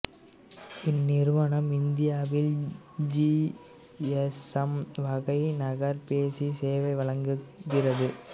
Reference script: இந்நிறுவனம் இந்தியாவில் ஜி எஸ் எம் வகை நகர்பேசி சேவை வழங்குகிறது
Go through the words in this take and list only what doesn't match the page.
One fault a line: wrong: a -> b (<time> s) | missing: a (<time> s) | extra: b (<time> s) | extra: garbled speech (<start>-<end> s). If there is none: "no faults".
no faults